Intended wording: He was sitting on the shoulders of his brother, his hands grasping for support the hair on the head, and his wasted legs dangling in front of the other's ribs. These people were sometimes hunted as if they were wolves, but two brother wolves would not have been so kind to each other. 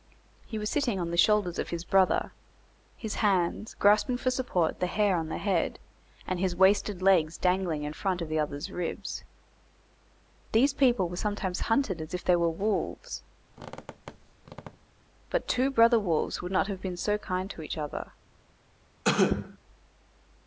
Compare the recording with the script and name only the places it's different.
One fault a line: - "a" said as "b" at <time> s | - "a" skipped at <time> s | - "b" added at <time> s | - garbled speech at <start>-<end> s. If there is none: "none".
none